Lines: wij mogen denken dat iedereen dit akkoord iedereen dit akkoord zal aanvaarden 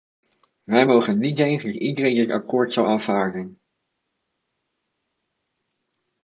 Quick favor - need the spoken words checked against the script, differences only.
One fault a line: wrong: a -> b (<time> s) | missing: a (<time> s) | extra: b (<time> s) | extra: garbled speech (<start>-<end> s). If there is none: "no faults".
extra: niet (1.2 s)
missing: iedereen dit akkoord (2.7 s)